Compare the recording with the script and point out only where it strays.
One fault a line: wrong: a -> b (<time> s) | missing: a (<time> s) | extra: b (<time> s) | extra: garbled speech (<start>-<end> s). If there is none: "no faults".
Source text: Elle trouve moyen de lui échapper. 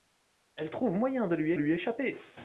extra: lui (1.5 s)